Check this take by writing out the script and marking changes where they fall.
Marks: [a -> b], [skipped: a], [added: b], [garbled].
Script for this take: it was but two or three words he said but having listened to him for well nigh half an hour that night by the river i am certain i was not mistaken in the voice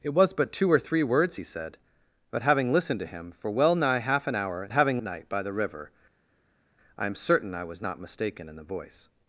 it was but two or three words he said but having listened to him for well nigh half an hour [that -> having] night by the river i am certain i was not mistaken in the voice